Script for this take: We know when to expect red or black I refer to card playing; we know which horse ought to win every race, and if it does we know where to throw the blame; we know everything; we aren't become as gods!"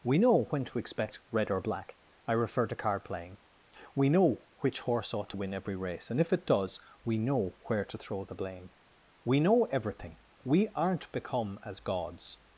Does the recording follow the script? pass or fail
pass